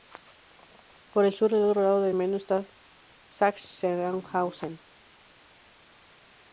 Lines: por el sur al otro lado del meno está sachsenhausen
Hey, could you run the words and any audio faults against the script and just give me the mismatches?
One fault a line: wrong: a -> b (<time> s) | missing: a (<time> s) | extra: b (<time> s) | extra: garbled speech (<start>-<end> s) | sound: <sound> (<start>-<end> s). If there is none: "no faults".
no faults